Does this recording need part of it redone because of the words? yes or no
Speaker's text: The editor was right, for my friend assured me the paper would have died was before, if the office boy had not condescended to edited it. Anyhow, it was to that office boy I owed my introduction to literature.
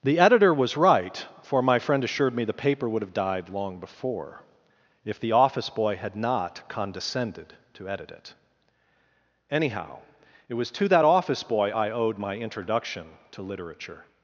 yes